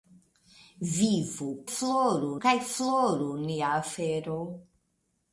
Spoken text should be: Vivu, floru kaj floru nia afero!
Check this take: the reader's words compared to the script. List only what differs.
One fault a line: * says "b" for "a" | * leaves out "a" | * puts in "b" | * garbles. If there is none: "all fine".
all fine